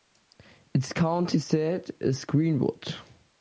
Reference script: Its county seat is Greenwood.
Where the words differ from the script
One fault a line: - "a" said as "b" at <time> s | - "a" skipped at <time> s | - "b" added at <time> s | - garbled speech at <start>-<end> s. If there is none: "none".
none